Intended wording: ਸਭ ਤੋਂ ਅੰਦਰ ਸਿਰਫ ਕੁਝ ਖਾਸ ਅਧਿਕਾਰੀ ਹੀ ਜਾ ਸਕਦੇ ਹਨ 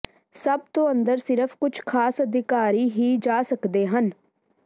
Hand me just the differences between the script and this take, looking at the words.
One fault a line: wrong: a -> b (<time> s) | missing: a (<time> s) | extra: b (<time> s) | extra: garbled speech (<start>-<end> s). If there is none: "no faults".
no faults